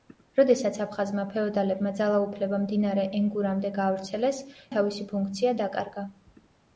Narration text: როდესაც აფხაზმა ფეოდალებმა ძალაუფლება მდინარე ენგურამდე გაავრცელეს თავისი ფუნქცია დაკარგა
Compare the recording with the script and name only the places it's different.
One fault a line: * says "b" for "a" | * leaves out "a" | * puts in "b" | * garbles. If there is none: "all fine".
all fine